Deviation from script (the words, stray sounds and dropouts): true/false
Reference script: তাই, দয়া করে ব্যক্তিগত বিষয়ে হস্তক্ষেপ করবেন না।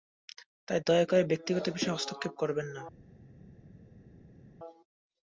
false